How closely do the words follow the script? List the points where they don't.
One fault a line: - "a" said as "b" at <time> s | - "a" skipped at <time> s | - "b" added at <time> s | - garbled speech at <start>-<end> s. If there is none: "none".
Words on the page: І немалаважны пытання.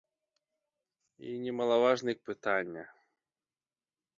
none